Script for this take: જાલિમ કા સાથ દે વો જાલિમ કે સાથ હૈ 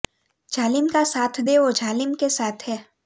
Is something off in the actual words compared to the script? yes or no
no